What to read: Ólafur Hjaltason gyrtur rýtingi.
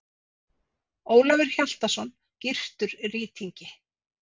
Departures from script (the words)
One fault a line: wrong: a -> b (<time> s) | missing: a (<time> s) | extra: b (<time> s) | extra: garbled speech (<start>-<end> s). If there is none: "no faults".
no faults